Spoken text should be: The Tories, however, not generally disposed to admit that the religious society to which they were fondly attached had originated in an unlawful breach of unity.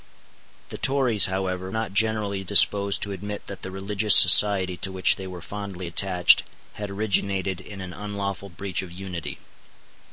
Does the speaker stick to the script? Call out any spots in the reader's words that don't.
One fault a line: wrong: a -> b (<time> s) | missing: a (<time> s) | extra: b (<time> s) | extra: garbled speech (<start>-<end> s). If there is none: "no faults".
no faults